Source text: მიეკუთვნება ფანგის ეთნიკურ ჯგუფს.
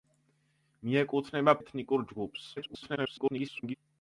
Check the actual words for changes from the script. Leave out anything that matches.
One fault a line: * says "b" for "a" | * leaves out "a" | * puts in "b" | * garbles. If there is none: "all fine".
* leaves out "ფანგის"
* garbles